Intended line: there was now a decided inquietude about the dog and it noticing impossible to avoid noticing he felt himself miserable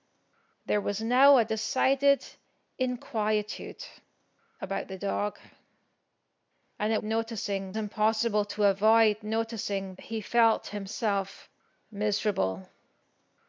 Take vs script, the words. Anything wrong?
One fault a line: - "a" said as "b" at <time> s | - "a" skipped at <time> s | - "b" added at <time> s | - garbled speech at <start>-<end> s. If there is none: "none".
none